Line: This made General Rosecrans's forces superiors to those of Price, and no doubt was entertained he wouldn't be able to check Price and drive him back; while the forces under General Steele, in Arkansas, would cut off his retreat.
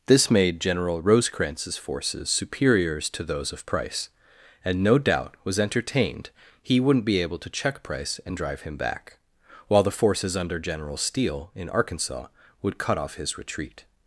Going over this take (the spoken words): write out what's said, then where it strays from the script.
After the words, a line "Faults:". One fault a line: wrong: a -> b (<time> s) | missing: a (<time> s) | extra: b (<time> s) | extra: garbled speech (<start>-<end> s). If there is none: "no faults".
This made General Rosecrans's forces superiors to those of Price, and no doubt was entertained he wouldn't be able to check Price and drive him back; while the forces under General Steele, in Arkansas, would cut off his retreat.
Faults:
no faults